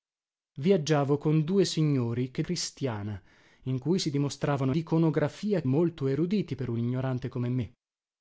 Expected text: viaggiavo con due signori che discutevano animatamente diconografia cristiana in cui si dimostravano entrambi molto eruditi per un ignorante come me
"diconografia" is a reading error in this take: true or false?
true